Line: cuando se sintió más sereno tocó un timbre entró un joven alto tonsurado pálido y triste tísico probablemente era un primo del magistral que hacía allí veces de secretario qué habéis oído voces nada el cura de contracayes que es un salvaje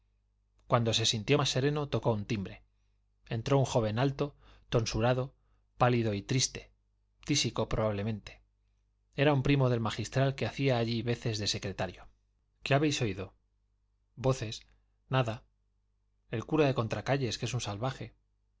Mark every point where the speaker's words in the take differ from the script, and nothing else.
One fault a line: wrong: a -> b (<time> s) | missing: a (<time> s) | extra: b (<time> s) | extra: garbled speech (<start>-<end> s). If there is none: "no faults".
no faults